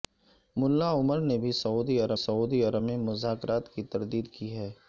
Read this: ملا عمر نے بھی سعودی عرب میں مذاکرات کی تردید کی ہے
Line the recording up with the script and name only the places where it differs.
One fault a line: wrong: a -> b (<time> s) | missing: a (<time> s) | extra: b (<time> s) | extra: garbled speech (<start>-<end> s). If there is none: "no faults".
extra: سعودی عرب (2.2 s)